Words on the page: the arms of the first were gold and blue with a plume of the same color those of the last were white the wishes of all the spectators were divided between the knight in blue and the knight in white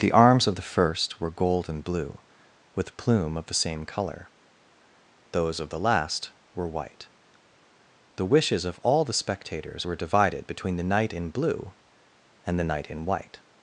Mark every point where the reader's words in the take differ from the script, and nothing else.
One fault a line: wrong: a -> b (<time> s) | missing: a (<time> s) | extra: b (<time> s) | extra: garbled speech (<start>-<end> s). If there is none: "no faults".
missing: a (3.0 s)